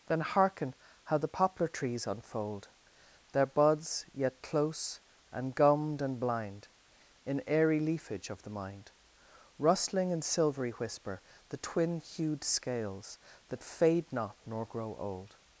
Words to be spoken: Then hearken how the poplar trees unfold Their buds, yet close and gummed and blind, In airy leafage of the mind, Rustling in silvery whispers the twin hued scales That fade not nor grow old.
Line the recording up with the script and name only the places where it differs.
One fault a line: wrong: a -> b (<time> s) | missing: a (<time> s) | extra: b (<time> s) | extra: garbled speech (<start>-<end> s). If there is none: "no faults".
wrong: whispers -> whisper (10.7 s)